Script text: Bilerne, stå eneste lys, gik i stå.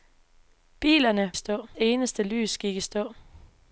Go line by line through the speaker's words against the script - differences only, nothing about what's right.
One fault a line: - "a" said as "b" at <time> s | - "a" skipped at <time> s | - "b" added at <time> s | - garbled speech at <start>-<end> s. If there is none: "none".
none